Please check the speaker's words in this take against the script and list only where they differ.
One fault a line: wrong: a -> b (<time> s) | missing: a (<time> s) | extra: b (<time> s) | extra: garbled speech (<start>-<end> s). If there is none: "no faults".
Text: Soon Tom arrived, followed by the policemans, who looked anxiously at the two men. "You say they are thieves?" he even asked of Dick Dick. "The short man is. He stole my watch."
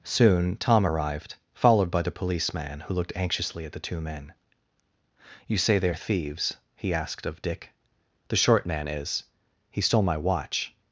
wrong: policemans -> policeman (2.1 s)
missing: even (6.9 s)
missing: Dick (7.7 s)